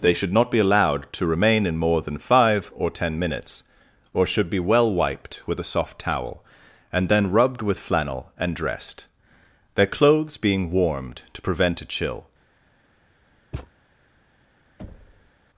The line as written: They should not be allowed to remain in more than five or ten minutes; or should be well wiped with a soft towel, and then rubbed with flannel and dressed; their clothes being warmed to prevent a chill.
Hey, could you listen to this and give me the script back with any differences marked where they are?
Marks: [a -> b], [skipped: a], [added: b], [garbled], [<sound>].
They should not be allowed to remain in more than five or ten minutes; or should be well wiped with a soft towel, and then rubbed with flannel and dressed; their clothes being warmed to prevent a chill. [thud] [thud]